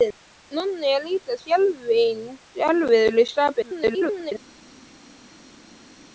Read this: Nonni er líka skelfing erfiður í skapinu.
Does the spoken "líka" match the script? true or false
true